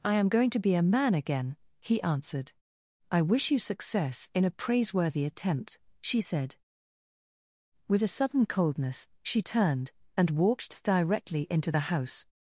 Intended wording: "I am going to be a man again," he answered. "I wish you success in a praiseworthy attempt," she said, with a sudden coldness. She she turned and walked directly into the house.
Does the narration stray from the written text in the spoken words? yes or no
yes